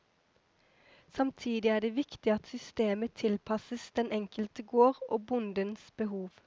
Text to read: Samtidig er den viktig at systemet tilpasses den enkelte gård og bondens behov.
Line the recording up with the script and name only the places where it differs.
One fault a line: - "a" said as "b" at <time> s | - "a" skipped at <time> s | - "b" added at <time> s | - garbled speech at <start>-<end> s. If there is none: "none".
- "den" said as "det" at 1.8 s